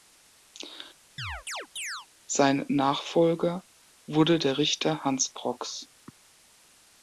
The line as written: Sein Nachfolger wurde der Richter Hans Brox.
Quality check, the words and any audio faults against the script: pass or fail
fail